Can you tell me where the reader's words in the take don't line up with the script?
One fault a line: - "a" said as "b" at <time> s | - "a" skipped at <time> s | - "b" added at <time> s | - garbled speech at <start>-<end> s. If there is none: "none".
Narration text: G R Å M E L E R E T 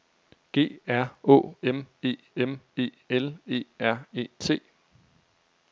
- "M E" added at 2.3 s